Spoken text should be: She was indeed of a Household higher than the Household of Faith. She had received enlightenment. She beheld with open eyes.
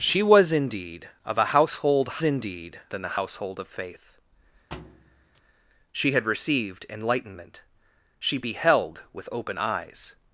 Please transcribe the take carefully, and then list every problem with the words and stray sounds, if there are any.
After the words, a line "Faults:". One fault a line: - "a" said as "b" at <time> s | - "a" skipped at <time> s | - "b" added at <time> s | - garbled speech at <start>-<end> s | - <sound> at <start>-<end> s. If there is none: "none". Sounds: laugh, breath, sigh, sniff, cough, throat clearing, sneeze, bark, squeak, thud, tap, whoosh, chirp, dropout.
She was indeed of a Household indeed than the Household of Faith. She had received enlightenment. She beheld with open eyes.
Faults:
- "higher" said as "indeed" at 2.2 s
- thud at 4.7-5.4 s